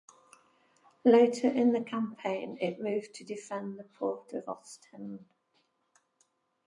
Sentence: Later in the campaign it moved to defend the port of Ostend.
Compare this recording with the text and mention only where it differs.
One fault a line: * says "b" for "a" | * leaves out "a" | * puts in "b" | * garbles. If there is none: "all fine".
all fine